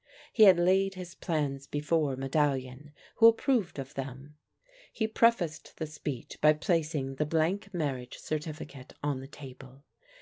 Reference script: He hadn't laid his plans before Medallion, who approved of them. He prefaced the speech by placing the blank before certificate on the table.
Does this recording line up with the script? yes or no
no